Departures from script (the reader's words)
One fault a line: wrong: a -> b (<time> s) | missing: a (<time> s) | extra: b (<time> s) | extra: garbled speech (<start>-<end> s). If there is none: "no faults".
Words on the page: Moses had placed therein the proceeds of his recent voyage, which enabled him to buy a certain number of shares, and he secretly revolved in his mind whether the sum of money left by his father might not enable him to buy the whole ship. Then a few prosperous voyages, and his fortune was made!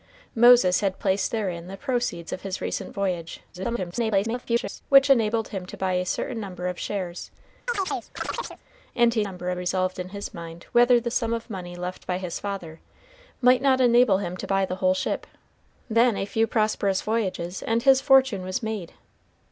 extra: garbled speech (3.5-4.8 s)
wrong: secretly -> number (9.2 s)